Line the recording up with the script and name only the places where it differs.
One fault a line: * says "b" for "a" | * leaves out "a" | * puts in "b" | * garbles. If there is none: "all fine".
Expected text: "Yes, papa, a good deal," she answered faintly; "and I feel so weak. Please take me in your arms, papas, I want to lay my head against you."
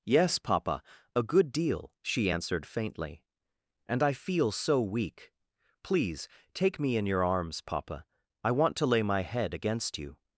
* says "papa" for "papas"